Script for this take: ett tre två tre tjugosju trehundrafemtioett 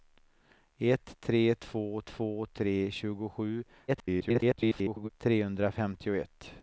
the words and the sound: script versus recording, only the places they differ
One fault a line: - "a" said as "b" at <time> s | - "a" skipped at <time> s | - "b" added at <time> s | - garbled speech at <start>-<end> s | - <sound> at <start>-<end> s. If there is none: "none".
- "två" added at 2.0 s
- garbled speech at 3.9-5.1 s